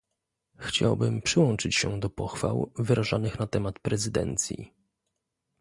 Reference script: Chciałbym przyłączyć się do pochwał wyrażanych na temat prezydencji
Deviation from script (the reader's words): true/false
false